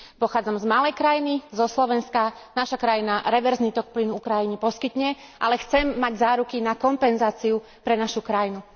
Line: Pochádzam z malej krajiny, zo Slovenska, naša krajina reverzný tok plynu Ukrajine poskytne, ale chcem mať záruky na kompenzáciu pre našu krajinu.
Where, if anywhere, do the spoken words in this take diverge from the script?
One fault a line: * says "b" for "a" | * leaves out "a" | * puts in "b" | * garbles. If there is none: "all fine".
all fine